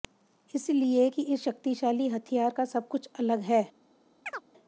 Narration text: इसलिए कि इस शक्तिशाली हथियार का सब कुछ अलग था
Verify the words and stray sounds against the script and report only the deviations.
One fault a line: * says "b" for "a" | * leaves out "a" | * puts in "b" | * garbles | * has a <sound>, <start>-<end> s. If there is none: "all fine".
* says "है" for "था"
* has a chirp, 4.3-4.4 s